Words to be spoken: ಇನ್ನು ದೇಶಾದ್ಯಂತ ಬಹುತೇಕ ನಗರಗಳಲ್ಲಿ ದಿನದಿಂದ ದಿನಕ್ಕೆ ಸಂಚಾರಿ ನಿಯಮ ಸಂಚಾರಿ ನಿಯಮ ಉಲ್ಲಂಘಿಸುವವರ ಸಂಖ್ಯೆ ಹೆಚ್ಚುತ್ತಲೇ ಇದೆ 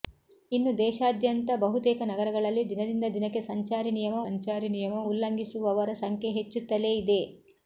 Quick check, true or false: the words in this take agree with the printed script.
true